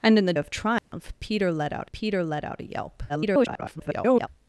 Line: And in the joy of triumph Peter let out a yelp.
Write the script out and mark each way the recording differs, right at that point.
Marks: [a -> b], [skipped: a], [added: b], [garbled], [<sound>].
And in the [skipped: joy] of triumph [dropout] Peter let out [added: Peter let out] a yelp. [garbled]